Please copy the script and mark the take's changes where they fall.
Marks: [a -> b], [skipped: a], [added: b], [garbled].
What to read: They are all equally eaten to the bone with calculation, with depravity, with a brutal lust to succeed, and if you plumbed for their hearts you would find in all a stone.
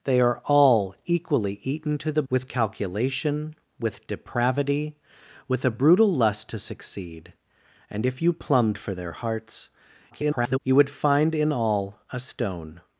They are all equally eaten to the [skipped: bone] with calculation, with depravity, with a brutal lust to succeed, and if you plumbed for their hearts [garbled] you would find in all a stone.